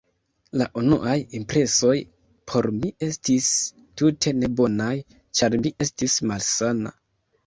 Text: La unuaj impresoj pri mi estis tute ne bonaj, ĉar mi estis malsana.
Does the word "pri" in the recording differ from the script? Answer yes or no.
yes